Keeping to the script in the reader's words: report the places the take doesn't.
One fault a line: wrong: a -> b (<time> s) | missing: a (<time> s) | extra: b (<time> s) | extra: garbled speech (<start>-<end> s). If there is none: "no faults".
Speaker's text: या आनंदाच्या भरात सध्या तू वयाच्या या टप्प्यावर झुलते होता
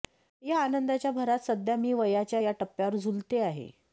wrong: तू -> मी (1.8 s)
wrong: होता -> आहे (3.4 s)